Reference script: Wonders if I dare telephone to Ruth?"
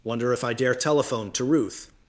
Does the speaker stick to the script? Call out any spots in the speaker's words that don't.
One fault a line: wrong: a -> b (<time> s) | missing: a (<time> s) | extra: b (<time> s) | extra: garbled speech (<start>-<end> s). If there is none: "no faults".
wrong: Wonders -> Wonder (0.0 s)